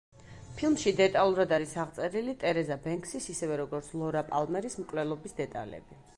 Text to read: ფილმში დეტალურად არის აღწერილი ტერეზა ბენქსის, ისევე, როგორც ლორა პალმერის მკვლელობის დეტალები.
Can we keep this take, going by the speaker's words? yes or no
yes